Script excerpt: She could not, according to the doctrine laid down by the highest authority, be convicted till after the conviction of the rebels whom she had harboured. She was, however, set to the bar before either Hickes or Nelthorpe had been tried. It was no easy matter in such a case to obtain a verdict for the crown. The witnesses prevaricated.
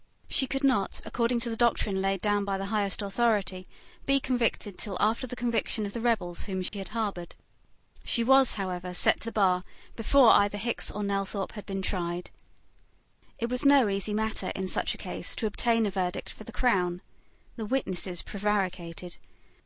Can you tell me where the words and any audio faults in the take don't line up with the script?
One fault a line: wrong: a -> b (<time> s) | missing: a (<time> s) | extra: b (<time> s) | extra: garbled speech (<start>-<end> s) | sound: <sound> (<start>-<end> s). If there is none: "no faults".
sound: dropout (6.7-6.7 s)